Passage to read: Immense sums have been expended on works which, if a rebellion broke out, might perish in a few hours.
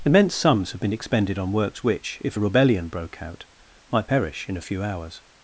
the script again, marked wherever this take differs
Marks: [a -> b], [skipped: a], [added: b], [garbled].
Immense sums have been expended on works which, if a rebellion broke out, might perish in a few hours.